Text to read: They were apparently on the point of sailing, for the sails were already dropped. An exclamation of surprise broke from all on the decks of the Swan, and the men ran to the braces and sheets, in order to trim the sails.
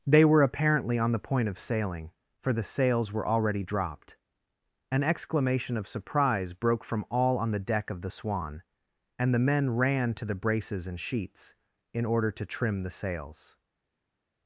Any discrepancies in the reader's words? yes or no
yes